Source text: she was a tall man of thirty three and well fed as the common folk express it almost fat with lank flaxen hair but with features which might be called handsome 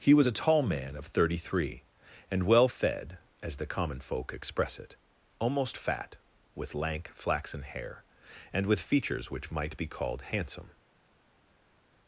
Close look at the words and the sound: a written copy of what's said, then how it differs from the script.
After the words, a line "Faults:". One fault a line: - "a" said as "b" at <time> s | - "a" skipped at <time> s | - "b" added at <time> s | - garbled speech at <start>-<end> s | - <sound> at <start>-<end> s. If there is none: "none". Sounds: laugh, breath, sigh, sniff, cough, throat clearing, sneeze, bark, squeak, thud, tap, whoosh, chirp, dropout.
he was a tall man of thirty three and well fed as the common folk express it almost fat with lank flaxen hair and with features which might be called handsome
Faults:
- "she" said as "he" at 0.0 s
- "but" said as "and" at 8.5 s